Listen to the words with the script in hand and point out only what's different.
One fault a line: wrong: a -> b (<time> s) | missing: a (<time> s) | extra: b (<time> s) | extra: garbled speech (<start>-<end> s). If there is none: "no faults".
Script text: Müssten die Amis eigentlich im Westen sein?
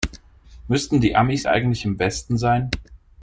no faults